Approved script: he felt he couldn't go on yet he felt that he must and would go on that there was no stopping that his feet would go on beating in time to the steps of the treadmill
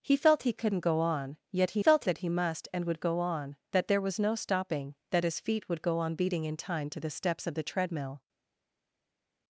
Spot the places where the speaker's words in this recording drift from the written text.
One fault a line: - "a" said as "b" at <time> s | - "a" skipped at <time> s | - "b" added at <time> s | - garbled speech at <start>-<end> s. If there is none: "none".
none